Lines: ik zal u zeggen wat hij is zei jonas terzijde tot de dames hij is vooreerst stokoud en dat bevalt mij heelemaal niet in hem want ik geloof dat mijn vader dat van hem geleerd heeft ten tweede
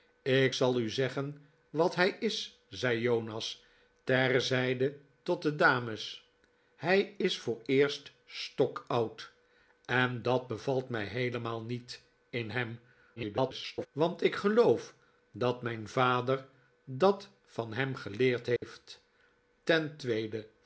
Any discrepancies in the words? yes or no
yes